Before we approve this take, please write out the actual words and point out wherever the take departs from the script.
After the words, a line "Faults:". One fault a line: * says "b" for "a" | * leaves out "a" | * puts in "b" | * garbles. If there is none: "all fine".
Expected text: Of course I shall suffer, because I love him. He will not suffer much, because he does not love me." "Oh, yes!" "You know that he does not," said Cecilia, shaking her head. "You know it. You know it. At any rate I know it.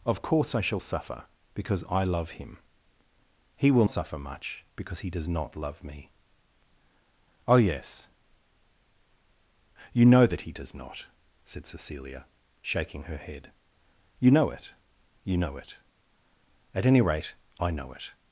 Of course I shall suffer, because I love him. He will suffer much, because he does not love me." "Oh, yes!" "You know that he does not," said Cecilia, shaking her head. "You know it. You know it. At any rate I know it.
Faults:
* leaves out "not"